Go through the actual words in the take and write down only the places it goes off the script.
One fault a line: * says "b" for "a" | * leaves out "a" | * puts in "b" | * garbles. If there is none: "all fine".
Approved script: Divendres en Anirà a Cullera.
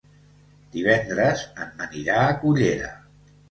all fine